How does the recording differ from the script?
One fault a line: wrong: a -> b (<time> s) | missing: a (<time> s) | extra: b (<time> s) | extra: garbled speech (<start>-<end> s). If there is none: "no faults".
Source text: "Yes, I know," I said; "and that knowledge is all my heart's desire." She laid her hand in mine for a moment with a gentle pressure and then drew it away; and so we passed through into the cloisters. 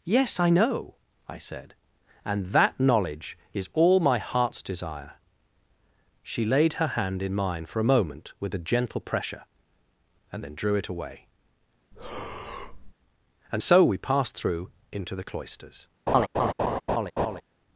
no faults